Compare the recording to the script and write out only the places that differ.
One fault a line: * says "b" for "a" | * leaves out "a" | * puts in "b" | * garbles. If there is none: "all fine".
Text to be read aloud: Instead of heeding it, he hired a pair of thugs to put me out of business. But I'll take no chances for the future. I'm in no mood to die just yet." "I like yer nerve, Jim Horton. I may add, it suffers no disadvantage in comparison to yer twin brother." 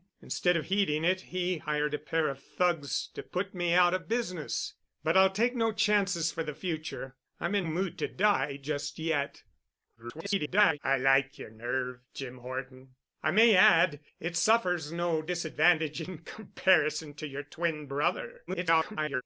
* leaves out "no"
* garbles
* garbles